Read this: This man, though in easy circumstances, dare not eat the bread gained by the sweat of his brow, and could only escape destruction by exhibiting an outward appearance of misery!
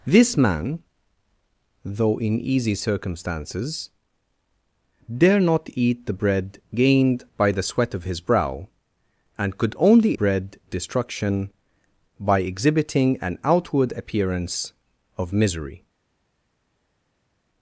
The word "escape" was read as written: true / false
false